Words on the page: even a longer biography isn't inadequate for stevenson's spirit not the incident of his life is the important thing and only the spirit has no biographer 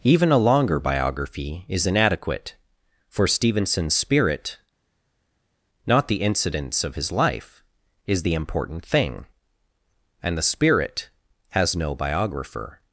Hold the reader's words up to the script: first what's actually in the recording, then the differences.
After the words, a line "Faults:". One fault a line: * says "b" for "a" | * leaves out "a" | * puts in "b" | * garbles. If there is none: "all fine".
even a longer biography is inadequate for stevenson's spirit not the incidents of his life is the important thing and the spirit has no biographer
Faults:
* says "is" for "isn't"
* says "incidents" for "incident"
* leaves out "only"